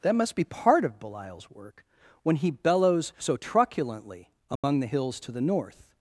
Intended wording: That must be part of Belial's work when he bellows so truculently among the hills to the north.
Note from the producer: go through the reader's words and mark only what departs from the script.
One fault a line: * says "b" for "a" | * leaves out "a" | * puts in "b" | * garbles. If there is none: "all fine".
all fine